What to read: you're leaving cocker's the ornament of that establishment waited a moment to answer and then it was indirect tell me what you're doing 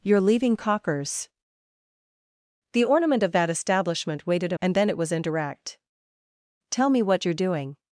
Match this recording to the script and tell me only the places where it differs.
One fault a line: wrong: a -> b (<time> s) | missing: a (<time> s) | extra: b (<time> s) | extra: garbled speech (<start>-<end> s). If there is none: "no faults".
missing: moment to answer (4.6 s)